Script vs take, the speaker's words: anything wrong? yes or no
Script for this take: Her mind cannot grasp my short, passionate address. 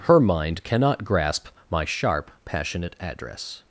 yes